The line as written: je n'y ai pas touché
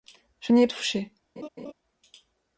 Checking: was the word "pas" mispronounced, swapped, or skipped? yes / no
yes